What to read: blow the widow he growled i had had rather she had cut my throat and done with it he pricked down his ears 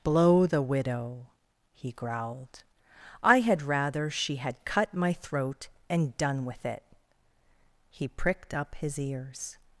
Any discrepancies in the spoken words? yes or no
yes